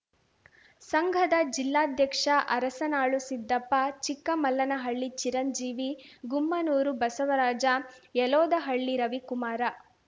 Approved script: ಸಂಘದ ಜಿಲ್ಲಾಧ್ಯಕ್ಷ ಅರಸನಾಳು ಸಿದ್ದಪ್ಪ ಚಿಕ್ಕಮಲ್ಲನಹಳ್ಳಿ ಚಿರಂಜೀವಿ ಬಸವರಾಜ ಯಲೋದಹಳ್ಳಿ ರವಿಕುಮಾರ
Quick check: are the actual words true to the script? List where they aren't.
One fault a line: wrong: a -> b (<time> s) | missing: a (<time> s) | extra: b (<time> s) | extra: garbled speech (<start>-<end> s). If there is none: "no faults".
extra: ಗುಮ್ಮನೂರು (6.3 s)